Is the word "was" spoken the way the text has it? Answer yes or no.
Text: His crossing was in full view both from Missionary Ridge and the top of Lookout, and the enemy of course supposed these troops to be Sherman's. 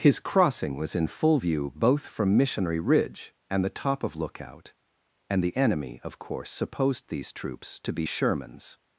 yes